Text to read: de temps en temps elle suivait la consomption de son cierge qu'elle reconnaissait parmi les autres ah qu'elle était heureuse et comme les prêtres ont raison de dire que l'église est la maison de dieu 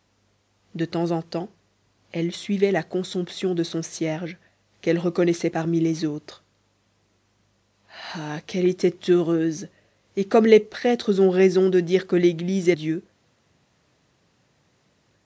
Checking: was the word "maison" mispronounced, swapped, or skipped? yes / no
yes